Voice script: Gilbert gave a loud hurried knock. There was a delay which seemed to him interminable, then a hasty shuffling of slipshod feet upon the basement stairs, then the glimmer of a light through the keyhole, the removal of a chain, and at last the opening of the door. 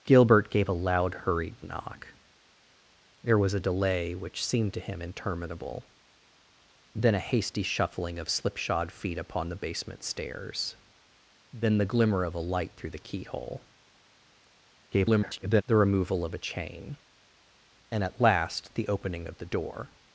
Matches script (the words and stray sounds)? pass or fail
fail